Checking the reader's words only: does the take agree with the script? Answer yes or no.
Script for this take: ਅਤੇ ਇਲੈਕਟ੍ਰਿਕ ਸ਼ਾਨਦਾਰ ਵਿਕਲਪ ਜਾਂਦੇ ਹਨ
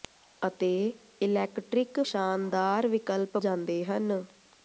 yes